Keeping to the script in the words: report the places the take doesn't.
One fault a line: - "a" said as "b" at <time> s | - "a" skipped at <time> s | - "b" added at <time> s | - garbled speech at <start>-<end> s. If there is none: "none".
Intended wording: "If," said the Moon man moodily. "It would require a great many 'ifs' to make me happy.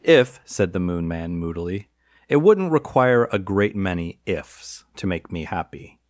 - "would" said as "wouldn't" at 2.4 s